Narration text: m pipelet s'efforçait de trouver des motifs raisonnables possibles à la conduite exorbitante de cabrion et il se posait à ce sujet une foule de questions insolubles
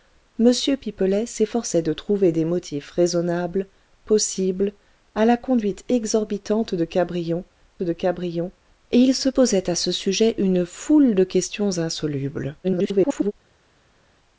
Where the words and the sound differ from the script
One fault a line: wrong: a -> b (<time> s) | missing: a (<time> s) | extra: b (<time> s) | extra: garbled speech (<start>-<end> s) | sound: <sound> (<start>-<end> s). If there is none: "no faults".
extra: de cabrion (7.8 s)
extra: garbled speech (12.6-13.3 s)